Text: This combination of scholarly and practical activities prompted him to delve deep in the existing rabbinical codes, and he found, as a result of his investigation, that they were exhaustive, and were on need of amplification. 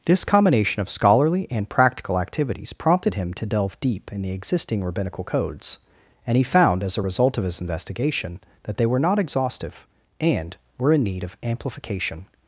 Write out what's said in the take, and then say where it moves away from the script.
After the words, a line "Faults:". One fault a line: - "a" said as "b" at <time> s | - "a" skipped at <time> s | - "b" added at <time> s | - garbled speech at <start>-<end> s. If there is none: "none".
This combination of scholarly and practical activities prompted him to delve deep in the existing rabbinical codes, and he found, as a result of his investigation, that they were not exhaustive, and were in need of amplification.
Faults:
- "not" added at 9.0 s
- "on" said as "in" at 10.9 s